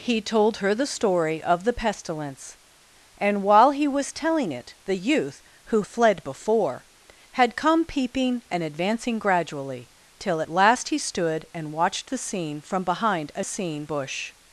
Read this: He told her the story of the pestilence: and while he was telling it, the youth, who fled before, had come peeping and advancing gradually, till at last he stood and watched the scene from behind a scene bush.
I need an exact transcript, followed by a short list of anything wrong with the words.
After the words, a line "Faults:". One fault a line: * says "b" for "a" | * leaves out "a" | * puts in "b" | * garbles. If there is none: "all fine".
He told her the story of the pestilence: and while he was telling it, the youth, who fled before, had come peeping and advancing gradually, till at last he stood and watched the scene from behind a scene bush.
Faults:
all fine